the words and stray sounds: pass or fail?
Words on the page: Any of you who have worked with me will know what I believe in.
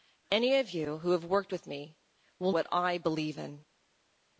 fail